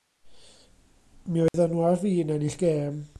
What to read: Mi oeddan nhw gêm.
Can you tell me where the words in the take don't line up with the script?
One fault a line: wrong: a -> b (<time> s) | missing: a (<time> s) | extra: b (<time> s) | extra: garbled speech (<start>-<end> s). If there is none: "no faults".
extra: ar fin ennill (1.9 s)